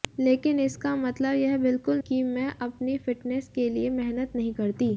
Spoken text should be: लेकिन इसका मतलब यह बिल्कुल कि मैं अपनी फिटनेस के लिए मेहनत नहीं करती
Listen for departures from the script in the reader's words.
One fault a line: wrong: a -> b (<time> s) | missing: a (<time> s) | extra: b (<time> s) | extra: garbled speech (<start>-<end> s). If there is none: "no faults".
no faults